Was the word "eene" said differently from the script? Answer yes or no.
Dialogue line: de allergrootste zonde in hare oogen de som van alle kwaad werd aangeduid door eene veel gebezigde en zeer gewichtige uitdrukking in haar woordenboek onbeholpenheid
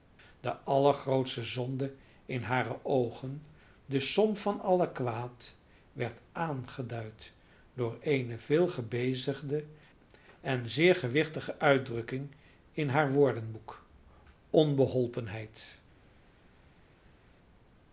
no